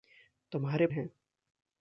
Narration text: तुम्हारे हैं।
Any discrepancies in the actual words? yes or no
no